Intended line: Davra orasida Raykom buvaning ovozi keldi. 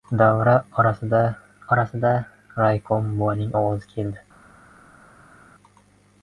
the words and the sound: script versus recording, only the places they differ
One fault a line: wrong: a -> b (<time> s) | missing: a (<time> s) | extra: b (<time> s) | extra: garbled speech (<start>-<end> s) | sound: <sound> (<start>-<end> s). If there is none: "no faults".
extra: orasida (1.8 s)